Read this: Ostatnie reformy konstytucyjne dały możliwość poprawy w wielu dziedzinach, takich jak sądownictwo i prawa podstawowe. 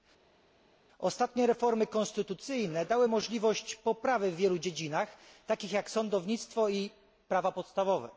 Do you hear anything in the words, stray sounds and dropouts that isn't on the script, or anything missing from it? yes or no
no